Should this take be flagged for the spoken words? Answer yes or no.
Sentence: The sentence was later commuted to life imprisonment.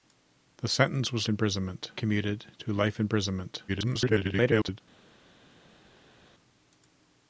yes